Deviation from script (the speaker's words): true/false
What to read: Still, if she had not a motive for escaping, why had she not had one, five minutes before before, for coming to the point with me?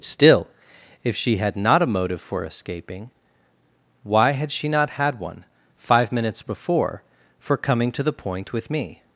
true